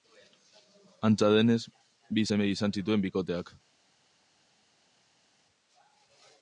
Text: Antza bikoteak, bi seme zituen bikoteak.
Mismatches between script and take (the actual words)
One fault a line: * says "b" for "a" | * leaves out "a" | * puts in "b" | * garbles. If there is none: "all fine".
* says "denez" for "bikoteak"
* puts in "izan"